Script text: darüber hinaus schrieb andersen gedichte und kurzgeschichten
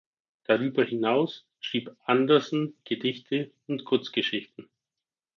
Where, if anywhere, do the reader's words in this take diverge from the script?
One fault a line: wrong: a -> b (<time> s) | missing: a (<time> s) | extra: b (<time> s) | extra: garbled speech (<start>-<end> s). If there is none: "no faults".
no faults